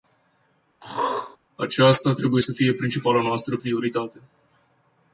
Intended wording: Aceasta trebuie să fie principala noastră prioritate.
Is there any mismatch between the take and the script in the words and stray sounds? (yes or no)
yes